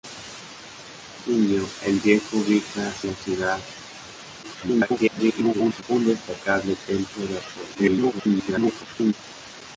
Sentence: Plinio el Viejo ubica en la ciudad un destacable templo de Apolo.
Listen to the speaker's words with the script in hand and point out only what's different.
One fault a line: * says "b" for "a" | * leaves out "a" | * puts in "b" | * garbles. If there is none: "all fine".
* leaves out "en"
* garbles
* garbles